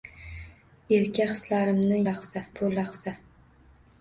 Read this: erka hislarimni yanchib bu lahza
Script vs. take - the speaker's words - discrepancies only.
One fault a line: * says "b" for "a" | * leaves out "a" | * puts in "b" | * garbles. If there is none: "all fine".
* says "lahza" for "yanchib"